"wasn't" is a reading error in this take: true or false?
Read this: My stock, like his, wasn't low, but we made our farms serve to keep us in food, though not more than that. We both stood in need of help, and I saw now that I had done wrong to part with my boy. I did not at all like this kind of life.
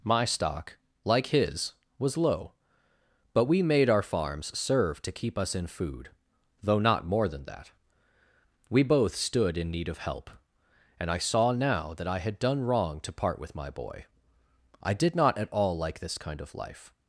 true